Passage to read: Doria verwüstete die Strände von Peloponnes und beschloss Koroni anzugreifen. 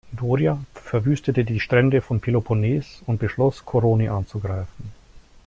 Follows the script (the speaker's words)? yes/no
yes